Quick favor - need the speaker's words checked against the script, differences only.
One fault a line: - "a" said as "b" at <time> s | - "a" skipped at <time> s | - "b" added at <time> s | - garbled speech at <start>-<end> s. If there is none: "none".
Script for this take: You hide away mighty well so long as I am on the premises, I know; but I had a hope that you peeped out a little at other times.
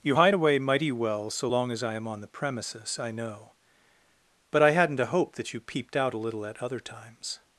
- "had" said as "hadn't" at 4.7 s